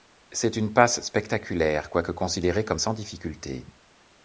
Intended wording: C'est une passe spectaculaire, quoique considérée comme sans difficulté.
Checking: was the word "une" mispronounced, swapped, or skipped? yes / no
no